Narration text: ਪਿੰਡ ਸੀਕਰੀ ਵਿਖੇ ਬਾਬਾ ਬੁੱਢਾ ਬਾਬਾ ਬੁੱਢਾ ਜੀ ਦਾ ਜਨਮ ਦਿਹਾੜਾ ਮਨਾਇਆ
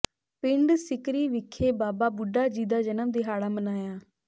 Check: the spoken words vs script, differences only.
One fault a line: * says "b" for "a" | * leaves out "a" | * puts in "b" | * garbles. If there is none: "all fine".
* leaves out "ਬਾਬਾ ਬੁੱਢਾ"